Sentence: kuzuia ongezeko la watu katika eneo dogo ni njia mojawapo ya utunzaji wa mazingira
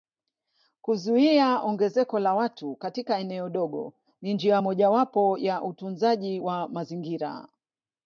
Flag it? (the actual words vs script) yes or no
no